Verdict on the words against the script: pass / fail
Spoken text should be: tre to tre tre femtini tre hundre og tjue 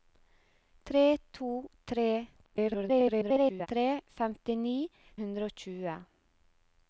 fail